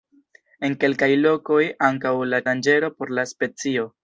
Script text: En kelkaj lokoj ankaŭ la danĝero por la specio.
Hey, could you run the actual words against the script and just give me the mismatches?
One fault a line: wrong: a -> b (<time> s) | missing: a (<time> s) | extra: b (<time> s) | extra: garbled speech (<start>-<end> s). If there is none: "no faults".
no faults